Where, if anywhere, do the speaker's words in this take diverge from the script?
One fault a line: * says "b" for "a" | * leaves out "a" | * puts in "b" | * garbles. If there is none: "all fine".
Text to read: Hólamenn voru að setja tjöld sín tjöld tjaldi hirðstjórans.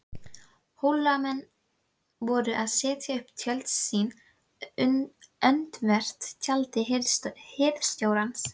* puts in "upp"
* says "öndvert" for "tjöld"